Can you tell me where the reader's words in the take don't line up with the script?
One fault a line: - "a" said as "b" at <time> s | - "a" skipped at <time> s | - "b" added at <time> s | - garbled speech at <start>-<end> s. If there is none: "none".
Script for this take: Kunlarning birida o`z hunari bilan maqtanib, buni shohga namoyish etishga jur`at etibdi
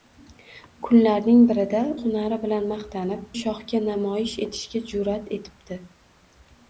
- "o`z" skipped at 1.8 s
- "buni" skipped at 3.3 s